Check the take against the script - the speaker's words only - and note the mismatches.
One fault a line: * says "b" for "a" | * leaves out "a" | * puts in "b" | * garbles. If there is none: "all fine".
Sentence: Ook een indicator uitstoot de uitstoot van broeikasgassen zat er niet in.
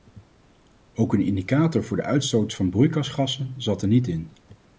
* says "voor" for "uitstoot"